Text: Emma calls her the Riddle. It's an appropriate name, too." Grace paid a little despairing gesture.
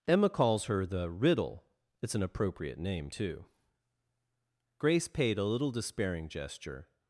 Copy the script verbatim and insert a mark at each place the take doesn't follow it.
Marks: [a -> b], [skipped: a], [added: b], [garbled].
Emma calls her the Riddle. It's an appropriate name, too." Grace paid a little despairing gesture.